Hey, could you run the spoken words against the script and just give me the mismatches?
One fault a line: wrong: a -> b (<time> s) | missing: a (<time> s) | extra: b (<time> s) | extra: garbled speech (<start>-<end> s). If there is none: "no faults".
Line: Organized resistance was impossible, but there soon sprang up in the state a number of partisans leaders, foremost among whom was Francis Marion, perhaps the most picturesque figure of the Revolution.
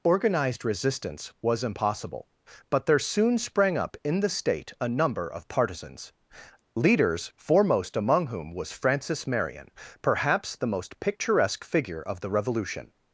no faults